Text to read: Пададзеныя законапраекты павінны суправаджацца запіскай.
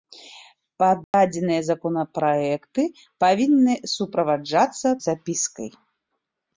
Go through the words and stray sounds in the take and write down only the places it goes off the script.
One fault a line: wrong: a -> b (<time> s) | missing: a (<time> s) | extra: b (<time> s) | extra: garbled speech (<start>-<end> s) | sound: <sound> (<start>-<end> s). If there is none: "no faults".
sound: dropout (1.0-1.1 s)